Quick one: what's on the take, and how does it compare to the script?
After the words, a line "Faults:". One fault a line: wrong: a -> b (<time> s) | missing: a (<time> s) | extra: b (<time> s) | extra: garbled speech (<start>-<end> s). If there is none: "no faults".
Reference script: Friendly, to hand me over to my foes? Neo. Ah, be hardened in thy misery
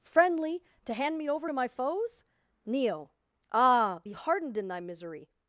Friendly, to hand me over to my foes? Neo. Ah, be hardened in thy misery
Faults:
no faults